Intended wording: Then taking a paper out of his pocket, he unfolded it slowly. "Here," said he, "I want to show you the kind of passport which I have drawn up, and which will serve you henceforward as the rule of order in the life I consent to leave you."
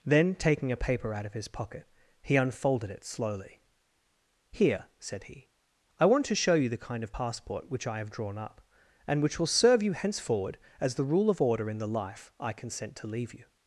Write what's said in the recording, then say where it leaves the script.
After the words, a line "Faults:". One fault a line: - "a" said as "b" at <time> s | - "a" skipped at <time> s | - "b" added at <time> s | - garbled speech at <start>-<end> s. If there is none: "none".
Then taking a paper out of his pocket, he unfolded it slowly. "Here," said he, "I want to show you the kind of passport which I have drawn up, and which will serve you henceforward as the rule of order in the life I consent to leave you."
Faults:
none